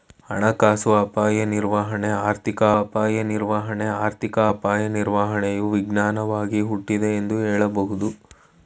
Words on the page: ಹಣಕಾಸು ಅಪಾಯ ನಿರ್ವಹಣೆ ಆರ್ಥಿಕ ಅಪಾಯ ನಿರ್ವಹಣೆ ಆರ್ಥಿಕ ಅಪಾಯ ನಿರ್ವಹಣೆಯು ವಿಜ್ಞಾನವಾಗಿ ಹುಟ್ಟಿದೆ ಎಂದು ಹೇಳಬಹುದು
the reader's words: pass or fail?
pass